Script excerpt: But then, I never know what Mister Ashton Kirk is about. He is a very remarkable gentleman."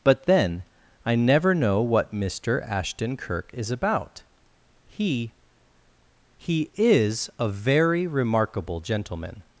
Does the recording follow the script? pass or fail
fail